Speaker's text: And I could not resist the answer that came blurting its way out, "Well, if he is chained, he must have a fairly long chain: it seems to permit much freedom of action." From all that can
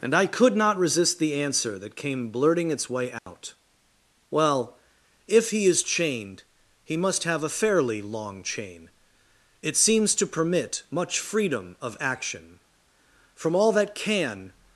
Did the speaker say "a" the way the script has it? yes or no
yes